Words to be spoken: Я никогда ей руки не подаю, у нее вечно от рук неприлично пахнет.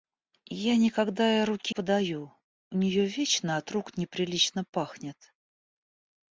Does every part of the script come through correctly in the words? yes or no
no